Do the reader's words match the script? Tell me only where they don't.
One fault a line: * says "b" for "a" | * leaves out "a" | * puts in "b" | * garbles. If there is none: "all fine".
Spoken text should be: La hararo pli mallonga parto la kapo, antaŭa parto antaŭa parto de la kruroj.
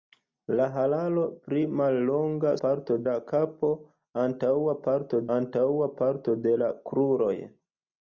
all fine